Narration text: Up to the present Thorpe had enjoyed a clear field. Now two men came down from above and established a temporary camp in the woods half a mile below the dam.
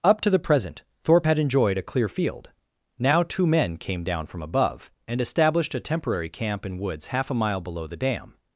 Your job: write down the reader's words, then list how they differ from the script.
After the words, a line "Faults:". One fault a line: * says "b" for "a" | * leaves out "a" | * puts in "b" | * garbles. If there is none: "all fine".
Up to the present Thorpe had enjoyed a clear field. Now two men came down from above and established a temporary camp in woods half a mile below the dam.
Faults:
* leaves out "the"